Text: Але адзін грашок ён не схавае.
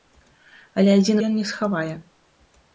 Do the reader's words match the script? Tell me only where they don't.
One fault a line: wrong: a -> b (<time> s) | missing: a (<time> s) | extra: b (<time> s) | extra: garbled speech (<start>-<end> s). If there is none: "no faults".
missing: грашок (1.2 s)